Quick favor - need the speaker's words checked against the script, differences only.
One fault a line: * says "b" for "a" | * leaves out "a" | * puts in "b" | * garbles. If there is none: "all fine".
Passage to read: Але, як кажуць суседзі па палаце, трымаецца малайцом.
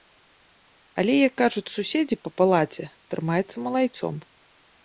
all fine